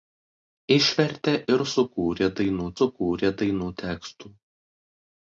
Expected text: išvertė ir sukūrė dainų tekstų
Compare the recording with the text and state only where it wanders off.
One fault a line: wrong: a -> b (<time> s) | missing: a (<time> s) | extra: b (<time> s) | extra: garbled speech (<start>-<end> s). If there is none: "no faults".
extra: sukūrė dainų (2.8 s)